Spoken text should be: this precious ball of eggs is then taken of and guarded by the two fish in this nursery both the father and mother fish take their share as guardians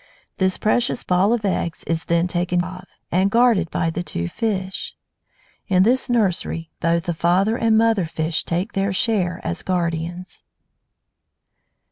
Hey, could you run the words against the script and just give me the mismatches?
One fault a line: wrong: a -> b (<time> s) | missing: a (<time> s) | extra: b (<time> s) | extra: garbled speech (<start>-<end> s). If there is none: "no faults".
no faults